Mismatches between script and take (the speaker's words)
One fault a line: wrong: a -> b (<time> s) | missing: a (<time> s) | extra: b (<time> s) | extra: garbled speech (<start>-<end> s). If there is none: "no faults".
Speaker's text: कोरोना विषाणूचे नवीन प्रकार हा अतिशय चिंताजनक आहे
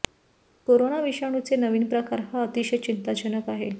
no faults